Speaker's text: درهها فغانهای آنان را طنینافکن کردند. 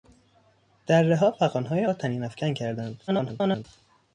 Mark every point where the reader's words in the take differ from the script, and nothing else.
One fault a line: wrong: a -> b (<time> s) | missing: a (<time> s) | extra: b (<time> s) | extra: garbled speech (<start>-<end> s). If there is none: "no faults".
missing: آنان (1.9 s)
extra: garbled speech (3.1-3.7 s)